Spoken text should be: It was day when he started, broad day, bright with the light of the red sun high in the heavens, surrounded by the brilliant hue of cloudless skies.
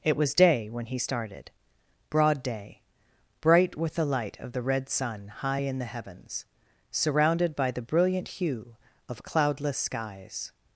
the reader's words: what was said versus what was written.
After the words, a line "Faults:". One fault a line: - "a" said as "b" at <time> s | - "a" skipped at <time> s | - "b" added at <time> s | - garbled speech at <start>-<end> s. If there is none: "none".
It was day when he started, broad day, bright with the light of the red sun high in the heavens, surrounded by the brilliant hue of cloudless skies.
Faults:
none